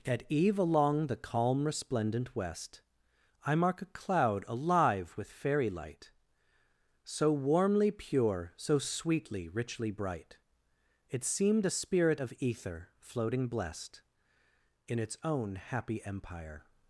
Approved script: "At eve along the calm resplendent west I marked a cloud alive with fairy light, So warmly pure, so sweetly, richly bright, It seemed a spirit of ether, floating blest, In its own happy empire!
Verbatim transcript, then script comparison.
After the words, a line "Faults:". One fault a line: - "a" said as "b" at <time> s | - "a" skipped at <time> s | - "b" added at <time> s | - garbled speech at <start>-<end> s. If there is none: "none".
"At eve along the calm resplendent west I mark a cloud alive with fairy light, So warmly pure, so sweetly, richly bright, It seemed a spirit of ether, floating blest, In its own happy empire!
Faults:
- "marked" said as "mark" at 3.5 s